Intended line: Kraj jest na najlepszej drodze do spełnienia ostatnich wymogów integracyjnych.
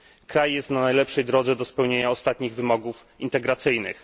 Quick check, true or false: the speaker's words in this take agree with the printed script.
true